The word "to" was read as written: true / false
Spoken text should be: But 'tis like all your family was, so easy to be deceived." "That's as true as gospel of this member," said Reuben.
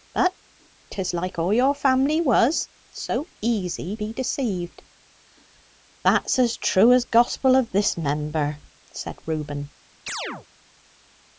false